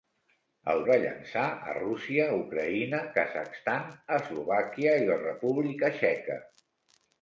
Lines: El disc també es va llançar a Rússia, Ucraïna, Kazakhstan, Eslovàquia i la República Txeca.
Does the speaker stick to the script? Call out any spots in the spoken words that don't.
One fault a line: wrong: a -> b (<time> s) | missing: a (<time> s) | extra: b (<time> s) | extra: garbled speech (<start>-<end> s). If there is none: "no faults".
missing: disc també es (0.8 s)